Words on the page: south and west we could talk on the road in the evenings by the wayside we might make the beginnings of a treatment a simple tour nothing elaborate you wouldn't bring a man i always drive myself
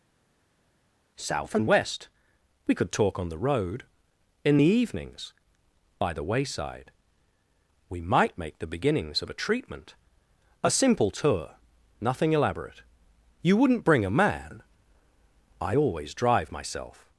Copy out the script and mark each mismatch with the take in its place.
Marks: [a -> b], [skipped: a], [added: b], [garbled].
south and west we could talk on the road in the evenings by the wayside we might make the beginnings of a treatment a simple tour nothing elaborate you wouldn't bring a man i always drive myself